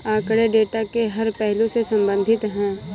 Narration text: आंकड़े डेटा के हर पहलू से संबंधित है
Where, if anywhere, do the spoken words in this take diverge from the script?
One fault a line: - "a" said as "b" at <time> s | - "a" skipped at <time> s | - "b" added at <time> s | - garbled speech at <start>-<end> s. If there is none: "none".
none